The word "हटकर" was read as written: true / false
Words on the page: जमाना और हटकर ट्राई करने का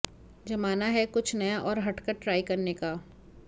true